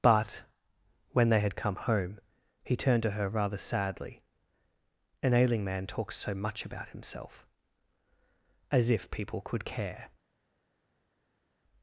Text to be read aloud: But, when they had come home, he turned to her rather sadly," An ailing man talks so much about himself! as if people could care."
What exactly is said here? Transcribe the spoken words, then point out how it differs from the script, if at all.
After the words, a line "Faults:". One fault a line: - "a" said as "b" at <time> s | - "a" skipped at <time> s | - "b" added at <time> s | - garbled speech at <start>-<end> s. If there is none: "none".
But, when they had come home, he turned to her rather sadly," An ailing man talks so much about himself! as if people could care."
Faults:
none